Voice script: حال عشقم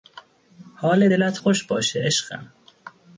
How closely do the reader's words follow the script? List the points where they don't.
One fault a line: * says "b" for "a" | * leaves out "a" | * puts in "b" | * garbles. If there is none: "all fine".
* puts in "دلت خوش باشه"